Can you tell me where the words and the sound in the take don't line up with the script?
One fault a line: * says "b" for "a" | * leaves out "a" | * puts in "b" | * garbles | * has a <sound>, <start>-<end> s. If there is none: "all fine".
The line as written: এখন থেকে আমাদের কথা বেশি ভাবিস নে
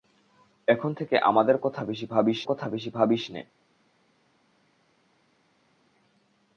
* puts in "কথা বেশি ভাবিস"